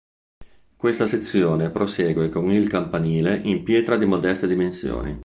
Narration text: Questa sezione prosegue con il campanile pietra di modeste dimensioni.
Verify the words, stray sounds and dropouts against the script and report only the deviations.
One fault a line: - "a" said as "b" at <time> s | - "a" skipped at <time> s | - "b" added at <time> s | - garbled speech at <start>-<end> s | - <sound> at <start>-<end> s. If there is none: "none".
- "in" added at 3.4 s